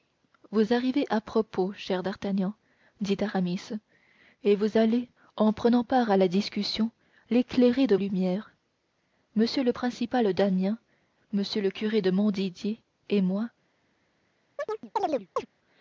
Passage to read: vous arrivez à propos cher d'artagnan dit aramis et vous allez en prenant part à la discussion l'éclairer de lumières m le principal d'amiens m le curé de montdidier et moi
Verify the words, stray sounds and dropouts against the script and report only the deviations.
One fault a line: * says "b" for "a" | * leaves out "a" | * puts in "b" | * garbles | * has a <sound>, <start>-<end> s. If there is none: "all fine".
* has a chirp, 14.6-15.5 s